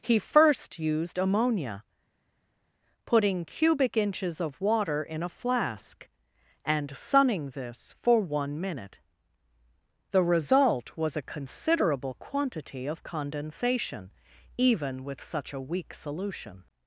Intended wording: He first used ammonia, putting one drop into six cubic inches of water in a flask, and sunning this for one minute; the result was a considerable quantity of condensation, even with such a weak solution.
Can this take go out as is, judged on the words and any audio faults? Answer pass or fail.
fail